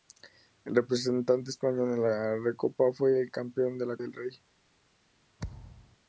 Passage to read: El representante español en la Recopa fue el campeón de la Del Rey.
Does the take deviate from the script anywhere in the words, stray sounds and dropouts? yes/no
yes